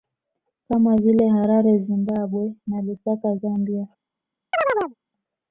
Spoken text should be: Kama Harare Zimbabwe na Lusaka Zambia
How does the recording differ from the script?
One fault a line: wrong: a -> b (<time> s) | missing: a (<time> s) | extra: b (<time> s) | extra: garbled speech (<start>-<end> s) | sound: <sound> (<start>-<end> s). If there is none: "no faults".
extra: vile (0.9 s)
sound: chirp (4.5-4.9 s)